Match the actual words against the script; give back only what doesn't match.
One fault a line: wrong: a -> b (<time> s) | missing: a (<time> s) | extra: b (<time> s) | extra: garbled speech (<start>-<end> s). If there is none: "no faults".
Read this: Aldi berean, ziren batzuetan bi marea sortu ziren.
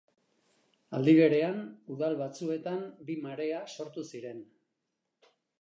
wrong: ziren -> udal (2.0 s)